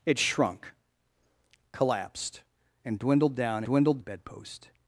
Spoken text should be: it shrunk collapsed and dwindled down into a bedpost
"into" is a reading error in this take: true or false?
true